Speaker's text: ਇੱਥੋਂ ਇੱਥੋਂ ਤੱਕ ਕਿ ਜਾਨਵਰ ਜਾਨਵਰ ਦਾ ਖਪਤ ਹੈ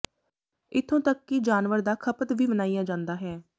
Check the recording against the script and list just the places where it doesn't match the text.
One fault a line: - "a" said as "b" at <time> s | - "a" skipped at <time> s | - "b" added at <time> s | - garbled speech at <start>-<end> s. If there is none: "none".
- "ਇੱਥੋਂ" skipped at 1.0 s
- "ਜਾਨਵਰ" skipped at 1.8 s
- "ਵੀ ਮਨਾਇਆ ਜਾਂਦਾ" added at 2.3 s